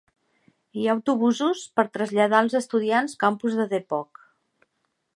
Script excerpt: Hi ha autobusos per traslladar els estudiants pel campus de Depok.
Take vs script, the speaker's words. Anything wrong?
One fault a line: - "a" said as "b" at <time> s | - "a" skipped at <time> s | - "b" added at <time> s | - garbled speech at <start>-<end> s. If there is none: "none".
- "pel" skipped at 3.1 s